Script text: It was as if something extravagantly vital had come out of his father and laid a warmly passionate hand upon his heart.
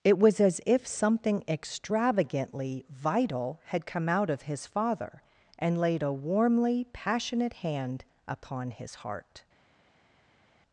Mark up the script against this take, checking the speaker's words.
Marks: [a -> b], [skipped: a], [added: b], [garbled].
It was as if something extravagantly vital had come out of his father and laid a warmly passionate hand upon his heart.